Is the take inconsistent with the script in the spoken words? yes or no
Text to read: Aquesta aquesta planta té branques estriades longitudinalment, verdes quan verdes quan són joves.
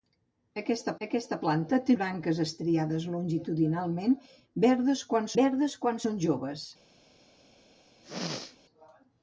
no